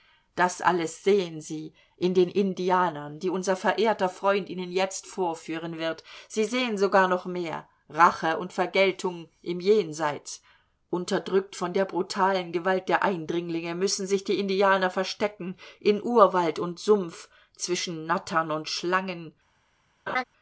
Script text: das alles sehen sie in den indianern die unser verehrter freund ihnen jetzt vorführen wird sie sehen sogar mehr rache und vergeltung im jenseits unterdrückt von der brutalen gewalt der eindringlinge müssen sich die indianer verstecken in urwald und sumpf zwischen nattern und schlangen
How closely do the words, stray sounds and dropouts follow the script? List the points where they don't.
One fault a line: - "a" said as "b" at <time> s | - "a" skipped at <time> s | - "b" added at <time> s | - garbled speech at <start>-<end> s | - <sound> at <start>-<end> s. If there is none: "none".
- "noch" added at 7.1 s
- laugh at 20.1-20.2 s